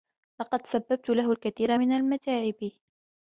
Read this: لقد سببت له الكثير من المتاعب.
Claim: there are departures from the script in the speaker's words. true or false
false